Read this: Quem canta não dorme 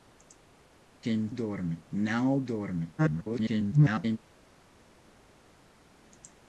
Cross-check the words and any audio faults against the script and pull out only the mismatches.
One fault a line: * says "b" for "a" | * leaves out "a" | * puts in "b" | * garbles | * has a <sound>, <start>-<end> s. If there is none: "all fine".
* says "dorme" for "canta"
* garbles